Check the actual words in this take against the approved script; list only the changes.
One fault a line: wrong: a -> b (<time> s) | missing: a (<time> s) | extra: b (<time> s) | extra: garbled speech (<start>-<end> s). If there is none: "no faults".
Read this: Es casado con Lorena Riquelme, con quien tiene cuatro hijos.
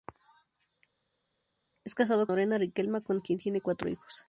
missing: con (2.3 s)